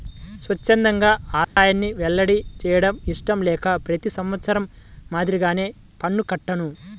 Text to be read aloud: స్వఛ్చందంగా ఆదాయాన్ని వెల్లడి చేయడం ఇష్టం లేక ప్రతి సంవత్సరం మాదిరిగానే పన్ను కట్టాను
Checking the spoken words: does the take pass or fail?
pass